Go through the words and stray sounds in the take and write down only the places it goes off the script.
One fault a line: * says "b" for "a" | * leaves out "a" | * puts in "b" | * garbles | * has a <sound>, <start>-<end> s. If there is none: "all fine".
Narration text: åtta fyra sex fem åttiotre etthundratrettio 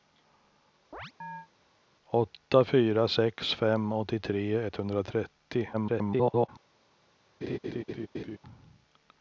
* has a chirp, 0.9-1.5 s
* garbles
* has a laugh, 7.4-8.4 s